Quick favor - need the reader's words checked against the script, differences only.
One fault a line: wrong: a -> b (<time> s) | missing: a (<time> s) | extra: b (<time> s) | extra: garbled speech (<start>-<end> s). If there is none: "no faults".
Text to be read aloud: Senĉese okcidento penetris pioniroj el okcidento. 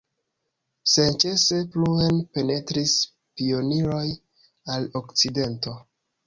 wrong: okcidento -> pluen (1.7 s)
wrong: el -> al (4.8 s)